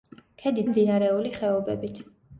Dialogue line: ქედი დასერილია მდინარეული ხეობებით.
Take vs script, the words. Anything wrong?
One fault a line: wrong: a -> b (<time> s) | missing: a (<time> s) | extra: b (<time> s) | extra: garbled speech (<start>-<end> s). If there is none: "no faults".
missing: დასერილია (0.6 s)